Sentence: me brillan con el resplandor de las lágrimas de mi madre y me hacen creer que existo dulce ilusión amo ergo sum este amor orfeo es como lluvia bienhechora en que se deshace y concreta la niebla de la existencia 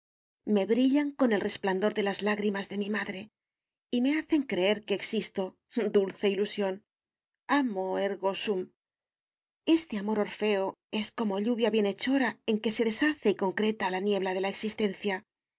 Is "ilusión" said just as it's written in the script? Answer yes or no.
yes